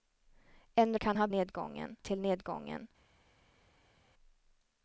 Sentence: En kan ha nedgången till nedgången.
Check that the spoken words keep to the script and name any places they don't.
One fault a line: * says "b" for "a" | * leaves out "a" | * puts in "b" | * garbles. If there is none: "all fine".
all fine